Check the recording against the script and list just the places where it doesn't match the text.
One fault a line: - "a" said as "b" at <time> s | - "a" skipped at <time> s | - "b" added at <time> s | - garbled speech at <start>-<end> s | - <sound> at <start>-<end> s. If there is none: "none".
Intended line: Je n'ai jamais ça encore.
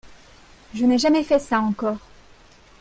- "fait" added at 1.2 s